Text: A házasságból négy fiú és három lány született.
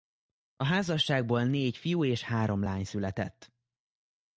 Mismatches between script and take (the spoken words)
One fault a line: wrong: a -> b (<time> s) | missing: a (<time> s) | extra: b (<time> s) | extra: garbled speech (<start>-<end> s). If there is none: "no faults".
no faults